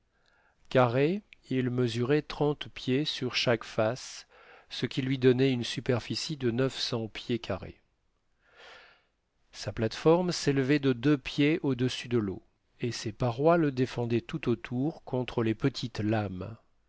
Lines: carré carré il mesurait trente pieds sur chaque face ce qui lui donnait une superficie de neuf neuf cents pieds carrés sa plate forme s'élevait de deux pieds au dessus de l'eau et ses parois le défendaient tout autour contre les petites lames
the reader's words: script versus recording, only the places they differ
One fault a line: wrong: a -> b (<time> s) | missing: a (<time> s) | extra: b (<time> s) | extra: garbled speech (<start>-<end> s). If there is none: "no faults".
missing: carré (1.2 s)
missing: neuf (6.8 s)